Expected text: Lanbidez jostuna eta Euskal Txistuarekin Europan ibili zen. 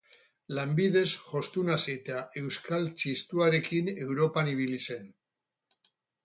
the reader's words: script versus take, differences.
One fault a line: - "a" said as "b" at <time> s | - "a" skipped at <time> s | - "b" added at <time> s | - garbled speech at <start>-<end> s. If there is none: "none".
none